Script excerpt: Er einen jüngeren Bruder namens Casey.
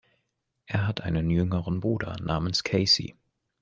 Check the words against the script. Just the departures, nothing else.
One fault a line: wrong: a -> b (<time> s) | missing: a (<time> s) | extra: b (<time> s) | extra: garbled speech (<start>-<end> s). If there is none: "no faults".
extra: hat (0.9 s)